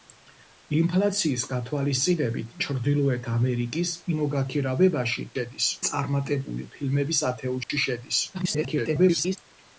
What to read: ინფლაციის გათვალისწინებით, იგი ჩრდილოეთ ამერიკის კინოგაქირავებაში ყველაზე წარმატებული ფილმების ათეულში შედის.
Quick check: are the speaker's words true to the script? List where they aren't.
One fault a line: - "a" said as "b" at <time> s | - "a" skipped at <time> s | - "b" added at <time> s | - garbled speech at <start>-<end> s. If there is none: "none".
- "იგი" skipped at 2.5 s
- "ყველაზე" said as "შედის" at 5.4 s
- garbled speech at 8.3-9.4 s